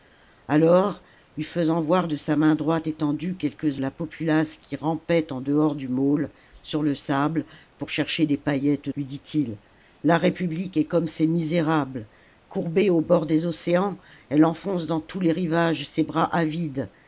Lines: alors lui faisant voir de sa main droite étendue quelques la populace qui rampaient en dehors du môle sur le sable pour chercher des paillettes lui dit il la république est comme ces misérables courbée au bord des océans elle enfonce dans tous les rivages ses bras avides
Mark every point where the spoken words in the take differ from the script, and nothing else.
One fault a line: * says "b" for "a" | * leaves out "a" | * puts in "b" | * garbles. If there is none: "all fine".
all fine